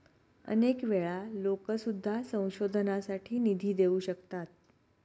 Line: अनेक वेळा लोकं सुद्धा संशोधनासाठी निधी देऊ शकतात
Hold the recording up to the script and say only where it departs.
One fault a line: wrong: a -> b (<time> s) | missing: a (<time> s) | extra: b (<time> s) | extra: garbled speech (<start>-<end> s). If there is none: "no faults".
no faults